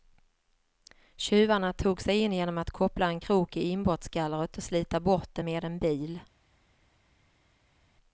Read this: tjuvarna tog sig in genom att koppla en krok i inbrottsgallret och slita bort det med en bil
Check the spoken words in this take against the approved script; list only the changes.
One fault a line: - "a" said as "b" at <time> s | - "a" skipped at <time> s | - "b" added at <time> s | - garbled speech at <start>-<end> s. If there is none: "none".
none